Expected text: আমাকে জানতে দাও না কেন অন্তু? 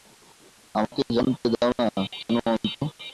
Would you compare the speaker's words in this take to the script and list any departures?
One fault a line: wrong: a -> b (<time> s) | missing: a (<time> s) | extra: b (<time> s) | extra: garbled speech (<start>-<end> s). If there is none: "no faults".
no faults